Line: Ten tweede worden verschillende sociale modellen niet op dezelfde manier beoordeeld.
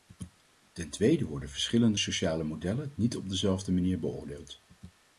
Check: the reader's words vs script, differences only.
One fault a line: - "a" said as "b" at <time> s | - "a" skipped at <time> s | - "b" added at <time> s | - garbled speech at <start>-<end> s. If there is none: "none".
none